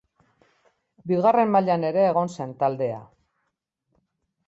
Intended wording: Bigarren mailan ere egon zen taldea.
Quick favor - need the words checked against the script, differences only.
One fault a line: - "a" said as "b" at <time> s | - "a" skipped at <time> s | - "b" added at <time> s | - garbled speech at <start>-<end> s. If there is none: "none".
none